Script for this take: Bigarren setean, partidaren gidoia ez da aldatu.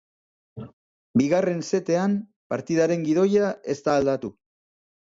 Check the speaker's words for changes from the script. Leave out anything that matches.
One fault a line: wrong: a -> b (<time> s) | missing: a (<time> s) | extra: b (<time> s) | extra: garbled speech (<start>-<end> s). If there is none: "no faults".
no faults